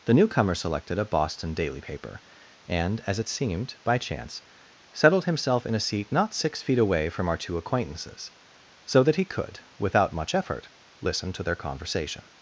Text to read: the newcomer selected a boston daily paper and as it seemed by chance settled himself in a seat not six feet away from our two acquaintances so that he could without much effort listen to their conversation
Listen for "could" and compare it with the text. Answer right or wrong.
right